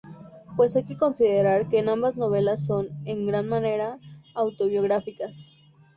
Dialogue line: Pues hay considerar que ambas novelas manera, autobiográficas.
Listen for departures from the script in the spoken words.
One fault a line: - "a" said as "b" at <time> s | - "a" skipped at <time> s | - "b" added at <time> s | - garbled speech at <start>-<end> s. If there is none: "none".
- "que" added at 0.8 s
- "son en gran" added at 2.6 s